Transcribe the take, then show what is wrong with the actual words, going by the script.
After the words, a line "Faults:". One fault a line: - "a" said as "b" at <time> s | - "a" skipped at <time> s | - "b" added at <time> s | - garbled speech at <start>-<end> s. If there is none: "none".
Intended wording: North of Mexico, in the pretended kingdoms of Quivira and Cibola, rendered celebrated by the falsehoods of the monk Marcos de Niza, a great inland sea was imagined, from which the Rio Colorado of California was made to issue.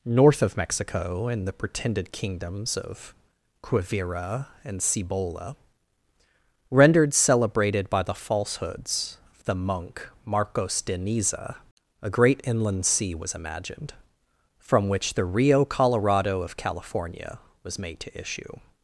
North of Mexico, in the pretended kingdoms of Quivira and Cibola, rendered celebrated by the falsehoods of the monk Marcos de Niza, a great inland sea was imagined, from which the Rio Colorado of California was made to issue.
Faults:
none